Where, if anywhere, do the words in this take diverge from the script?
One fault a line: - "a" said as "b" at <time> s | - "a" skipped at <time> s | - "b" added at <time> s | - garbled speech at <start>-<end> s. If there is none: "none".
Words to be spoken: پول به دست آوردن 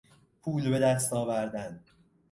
none